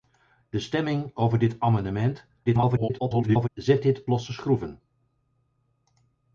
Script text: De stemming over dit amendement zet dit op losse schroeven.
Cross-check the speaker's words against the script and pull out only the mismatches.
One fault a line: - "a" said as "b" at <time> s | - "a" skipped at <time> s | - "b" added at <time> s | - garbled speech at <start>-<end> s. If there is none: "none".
- garbled speech at 2.5-3.5 s
- "op" skipped at 4.1 s